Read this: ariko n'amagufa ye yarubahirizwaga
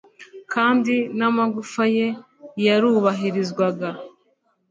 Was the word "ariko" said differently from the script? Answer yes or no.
yes